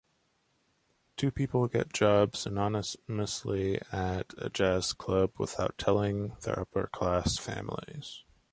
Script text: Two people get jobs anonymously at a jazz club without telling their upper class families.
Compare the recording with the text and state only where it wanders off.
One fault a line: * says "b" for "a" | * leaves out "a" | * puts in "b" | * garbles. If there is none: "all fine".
all fine